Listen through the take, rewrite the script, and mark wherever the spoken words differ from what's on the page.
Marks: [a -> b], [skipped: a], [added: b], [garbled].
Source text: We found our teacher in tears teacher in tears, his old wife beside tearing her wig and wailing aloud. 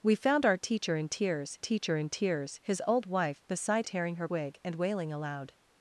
We found our teacher in tears teacher in tears, his old wife beside tearing her wig and wailing aloud.